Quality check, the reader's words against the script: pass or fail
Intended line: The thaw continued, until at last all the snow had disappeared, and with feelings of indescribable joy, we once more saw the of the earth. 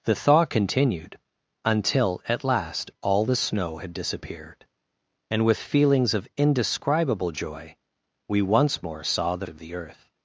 pass